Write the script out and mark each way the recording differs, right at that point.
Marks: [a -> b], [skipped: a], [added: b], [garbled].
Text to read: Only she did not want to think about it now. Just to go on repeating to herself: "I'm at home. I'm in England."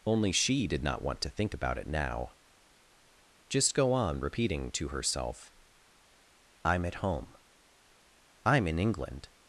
Only she did not want to think about it now. Just [skipped: to] go on repeating to herself: "I'm at home. I'm in England."